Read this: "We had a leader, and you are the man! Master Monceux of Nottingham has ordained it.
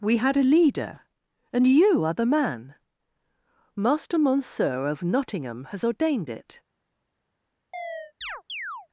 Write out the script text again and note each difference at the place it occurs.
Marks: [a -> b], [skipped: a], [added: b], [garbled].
"We had a leader, and you are the man! Master Monceux of Nottingham has ordained it.